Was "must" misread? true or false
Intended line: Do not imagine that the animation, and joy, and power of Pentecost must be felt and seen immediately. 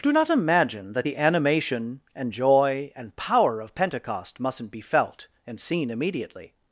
true